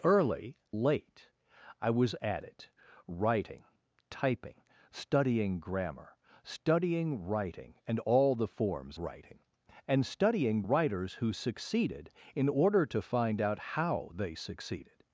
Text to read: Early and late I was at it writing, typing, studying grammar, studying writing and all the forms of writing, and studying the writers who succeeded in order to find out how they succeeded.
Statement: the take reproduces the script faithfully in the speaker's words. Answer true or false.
false